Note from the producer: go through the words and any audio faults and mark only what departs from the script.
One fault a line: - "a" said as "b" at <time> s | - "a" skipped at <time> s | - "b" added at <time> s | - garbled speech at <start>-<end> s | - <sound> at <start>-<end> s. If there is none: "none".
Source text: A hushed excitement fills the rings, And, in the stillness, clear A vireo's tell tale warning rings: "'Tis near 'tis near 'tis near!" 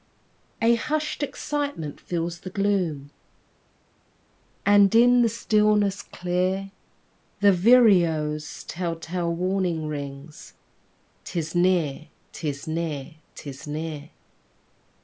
- "rings" said as "gloom" at 2.5 s
- "A" said as "The" at 7.4 s